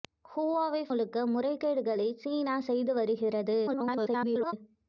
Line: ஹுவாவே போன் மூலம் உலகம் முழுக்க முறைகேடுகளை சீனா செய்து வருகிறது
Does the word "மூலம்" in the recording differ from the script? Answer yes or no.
yes